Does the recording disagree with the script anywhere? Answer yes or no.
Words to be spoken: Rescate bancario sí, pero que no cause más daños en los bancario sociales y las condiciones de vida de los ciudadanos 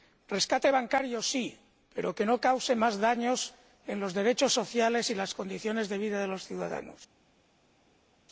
yes